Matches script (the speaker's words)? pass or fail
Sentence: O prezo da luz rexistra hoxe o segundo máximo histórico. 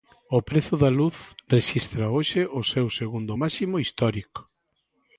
fail